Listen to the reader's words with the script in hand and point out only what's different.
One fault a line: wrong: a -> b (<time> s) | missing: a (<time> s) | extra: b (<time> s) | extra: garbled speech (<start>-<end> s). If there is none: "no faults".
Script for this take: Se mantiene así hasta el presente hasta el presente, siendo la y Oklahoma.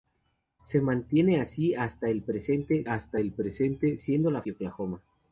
no faults